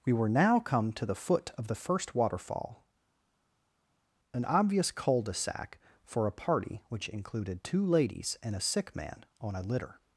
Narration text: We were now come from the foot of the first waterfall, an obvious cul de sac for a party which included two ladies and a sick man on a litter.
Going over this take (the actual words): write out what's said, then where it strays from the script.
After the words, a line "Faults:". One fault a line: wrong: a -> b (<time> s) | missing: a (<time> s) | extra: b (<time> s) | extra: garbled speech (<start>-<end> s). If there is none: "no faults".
We were now come to the foot of the first waterfall, an obvious cul de sac for a party which included two ladies and a sick man on a litter.
Faults:
wrong: from -> to (0.9 s)